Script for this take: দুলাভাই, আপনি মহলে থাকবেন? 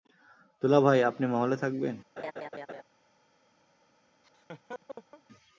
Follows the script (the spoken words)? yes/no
yes